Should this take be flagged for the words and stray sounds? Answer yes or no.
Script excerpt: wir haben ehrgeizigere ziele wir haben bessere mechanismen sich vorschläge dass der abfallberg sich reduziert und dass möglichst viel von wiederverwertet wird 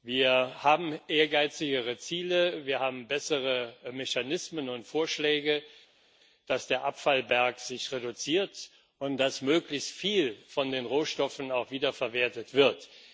yes